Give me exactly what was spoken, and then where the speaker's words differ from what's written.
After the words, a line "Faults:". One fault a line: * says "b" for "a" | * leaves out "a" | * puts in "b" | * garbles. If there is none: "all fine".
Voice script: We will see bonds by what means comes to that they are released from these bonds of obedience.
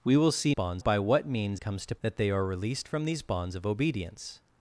We will see bonds by what means comes to that they are released from these bonds of obedience.
Faults:
all fine